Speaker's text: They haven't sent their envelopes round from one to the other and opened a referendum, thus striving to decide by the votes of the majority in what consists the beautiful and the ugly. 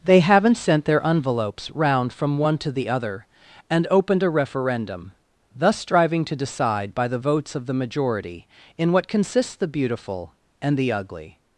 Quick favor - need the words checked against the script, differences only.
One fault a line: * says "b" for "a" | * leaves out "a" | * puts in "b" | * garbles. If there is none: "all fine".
all fine